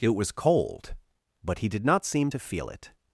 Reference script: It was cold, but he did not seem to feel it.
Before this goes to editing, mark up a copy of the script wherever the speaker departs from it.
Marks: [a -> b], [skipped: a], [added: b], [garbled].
It was cold, but he did not seem to feel it.